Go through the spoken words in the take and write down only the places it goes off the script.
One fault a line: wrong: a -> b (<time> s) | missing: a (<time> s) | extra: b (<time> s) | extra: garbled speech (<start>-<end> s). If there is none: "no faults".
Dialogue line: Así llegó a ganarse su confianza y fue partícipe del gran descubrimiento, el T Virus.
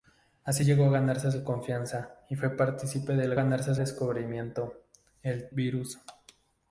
wrong: gran -> ganarse (3.3 s)
missing: T (5.5 s)